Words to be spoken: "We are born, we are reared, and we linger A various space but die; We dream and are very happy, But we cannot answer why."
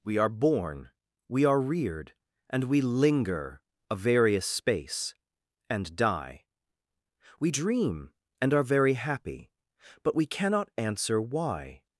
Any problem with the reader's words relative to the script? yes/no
yes